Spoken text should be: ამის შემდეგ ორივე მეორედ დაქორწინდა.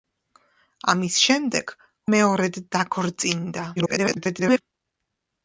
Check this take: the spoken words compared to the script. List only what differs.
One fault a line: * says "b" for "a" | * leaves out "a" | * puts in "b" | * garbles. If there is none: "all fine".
* leaves out "ორივე"
* garbles